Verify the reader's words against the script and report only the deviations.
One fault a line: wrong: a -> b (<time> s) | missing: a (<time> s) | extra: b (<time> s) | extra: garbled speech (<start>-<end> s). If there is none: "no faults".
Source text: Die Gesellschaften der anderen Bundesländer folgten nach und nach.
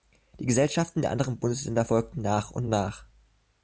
no faults